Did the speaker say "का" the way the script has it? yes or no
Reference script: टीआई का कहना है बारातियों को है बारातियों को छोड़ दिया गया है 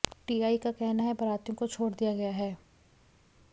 yes